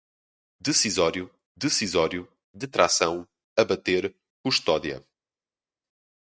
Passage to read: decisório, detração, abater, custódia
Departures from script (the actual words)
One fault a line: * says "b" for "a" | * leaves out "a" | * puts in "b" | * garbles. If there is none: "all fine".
* puts in "decisório"